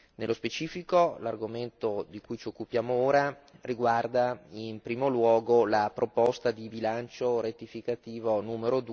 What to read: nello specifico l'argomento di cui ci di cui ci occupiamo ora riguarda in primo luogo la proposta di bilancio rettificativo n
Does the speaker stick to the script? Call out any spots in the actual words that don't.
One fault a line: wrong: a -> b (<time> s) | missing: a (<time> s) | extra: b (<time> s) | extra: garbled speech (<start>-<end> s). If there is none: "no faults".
missing: di cui ci (2.5 s)